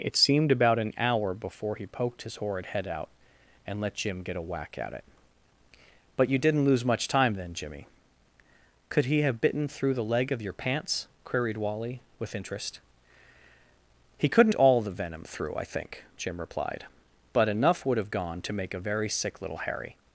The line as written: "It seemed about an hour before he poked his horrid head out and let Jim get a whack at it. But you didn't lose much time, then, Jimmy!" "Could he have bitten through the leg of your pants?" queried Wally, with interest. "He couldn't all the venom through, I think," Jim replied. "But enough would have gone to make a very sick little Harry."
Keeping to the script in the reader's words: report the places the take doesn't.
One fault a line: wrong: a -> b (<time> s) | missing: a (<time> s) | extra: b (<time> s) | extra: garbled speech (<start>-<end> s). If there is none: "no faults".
no faults